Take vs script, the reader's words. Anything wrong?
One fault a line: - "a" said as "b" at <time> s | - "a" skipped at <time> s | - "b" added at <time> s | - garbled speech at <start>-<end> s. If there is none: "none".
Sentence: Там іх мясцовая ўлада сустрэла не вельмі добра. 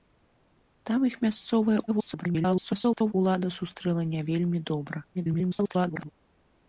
- garbled speech at 1.9-3.1 s
- garbled speech at 5.1-6.1 s